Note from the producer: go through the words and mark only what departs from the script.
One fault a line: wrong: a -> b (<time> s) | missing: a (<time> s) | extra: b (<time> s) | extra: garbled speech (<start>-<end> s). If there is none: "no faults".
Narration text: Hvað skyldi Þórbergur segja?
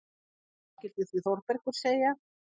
extra: skyldi (1.1 s)